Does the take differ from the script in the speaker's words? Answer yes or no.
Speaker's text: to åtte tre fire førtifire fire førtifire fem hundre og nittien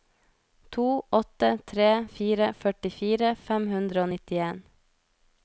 yes